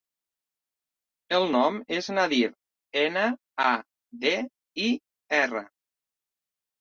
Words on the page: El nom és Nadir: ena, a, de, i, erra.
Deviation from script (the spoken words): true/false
false